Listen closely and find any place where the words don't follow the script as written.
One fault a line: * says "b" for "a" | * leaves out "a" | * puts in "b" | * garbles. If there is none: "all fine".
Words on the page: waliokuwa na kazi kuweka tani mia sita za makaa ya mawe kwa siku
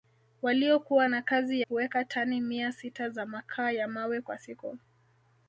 all fine